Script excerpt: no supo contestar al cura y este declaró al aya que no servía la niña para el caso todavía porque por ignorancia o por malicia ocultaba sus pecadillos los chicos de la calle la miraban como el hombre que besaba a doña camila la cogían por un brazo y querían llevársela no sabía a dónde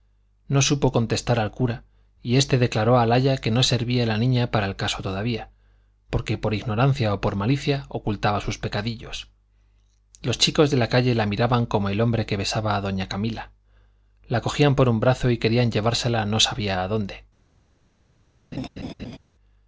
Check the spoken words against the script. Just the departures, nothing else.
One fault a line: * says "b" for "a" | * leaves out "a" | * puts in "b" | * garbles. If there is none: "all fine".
all fine